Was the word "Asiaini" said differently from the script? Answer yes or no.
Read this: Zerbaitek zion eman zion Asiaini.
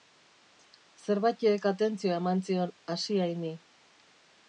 no